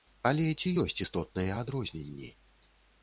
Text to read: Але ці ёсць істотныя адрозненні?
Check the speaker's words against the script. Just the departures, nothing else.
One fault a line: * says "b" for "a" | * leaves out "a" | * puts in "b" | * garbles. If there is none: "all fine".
all fine